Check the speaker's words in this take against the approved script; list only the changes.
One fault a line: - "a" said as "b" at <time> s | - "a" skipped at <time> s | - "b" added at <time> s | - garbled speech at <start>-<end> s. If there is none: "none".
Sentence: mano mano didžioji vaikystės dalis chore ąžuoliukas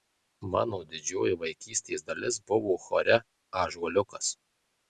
- "mano" skipped at 0.8 s
- "buvo" added at 2.5 s